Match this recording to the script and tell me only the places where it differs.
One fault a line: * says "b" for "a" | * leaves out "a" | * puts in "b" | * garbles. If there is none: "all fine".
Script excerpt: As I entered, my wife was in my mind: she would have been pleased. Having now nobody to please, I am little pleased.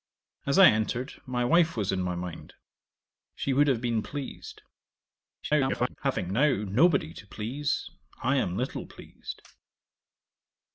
* garbles